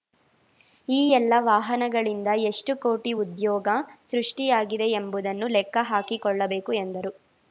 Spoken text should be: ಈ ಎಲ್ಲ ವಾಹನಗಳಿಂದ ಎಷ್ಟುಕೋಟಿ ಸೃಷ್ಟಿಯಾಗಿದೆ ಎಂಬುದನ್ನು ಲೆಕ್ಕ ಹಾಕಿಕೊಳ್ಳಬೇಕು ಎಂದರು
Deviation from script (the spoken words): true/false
true